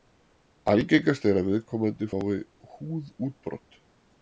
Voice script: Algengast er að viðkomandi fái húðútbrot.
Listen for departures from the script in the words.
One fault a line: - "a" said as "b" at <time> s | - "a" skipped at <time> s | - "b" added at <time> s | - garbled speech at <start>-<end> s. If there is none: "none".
none